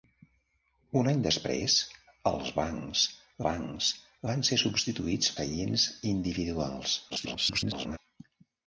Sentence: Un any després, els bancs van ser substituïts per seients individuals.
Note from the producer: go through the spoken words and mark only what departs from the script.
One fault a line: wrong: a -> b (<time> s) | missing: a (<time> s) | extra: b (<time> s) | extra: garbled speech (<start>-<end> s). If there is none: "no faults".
extra: bancs (3.5 s)
missing: per (5.3 s)
extra: garbled speech (7.1-8.0 s)